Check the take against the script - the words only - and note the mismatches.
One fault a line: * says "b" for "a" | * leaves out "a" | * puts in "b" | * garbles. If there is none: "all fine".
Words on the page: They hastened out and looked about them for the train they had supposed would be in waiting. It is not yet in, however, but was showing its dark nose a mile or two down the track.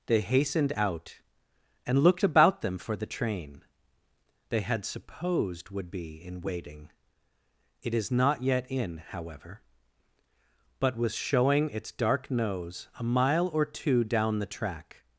all fine